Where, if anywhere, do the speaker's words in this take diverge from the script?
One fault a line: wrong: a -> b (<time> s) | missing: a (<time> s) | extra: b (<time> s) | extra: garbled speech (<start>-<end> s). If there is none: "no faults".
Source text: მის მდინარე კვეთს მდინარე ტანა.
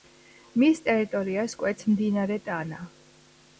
wrong: მდინარე -> ტერიტორიას (0.9 s)